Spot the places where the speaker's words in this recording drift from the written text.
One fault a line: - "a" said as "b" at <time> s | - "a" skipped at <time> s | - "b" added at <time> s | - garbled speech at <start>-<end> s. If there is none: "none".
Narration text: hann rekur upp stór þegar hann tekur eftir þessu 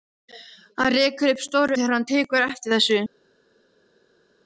none